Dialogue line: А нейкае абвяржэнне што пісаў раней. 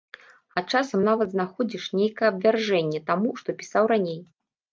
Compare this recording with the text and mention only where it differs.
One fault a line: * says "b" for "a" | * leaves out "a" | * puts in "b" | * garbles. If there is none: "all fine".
* puts in "часам нават знаходзіш"
* puts in "таму"